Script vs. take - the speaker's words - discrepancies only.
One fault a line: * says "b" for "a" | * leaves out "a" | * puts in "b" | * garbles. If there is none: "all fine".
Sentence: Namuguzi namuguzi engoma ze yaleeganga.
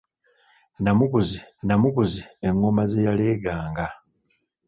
all fine